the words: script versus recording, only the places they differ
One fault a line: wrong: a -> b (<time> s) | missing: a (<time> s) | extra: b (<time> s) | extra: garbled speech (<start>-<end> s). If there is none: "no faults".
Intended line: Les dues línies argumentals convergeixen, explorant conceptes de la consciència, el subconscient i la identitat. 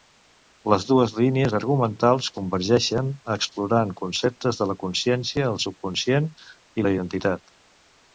no faults